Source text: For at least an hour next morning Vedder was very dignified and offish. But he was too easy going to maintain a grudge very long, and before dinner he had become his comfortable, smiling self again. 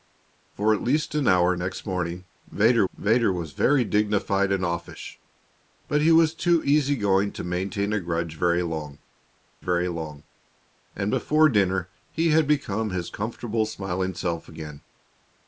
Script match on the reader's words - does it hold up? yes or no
no